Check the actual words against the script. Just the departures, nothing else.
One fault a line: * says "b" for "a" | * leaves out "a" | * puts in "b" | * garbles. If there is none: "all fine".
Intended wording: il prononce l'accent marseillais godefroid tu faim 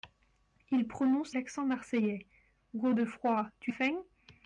all fine